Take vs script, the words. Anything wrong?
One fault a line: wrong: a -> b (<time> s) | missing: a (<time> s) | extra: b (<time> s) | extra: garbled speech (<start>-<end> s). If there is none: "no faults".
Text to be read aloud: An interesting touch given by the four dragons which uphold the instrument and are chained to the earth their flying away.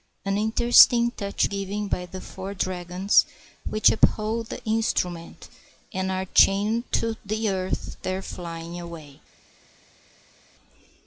no faults